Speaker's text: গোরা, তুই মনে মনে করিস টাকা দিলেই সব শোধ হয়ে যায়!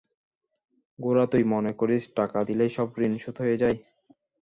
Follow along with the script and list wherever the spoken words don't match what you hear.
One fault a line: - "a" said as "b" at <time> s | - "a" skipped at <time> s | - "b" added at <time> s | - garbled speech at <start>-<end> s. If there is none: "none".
- "মনে" skipped at 1.7 s
- "ঋণ" added at 3.0 s